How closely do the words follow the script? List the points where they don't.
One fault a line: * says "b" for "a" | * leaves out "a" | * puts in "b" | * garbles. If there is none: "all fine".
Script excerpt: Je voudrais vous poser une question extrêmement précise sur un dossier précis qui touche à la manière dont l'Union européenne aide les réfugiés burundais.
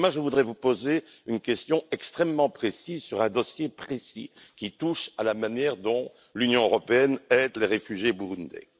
all fine